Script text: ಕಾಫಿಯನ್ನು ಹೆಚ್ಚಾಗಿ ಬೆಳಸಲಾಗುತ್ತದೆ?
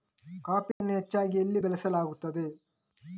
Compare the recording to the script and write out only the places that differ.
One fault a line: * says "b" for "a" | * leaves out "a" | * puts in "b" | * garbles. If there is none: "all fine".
* puts in "ಎಲ್ಲಿ"